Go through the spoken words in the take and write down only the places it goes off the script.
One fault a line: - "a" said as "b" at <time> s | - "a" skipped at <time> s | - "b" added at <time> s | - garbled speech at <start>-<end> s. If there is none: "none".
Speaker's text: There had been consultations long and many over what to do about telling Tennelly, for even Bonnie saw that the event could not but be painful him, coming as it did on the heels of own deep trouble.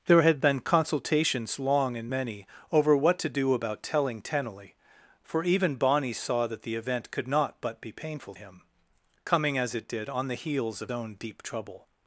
none